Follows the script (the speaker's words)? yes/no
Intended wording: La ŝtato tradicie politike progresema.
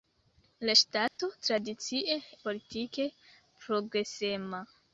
yes